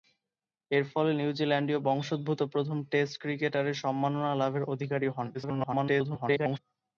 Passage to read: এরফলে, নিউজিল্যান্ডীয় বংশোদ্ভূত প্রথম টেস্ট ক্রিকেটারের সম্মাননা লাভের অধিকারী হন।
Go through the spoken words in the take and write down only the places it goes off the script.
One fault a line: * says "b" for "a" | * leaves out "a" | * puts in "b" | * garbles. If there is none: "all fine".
* garbles